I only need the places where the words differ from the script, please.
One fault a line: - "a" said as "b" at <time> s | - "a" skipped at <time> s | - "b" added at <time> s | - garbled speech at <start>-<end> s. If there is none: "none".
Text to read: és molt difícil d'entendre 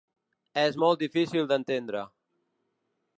none